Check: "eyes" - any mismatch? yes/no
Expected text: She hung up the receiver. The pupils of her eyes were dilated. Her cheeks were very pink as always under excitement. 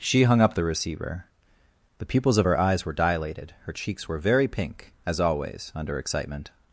no